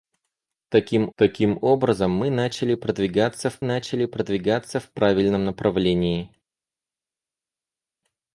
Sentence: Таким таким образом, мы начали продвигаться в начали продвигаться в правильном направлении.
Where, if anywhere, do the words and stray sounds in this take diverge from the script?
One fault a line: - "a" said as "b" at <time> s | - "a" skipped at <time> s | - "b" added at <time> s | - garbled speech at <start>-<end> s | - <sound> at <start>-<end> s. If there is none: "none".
none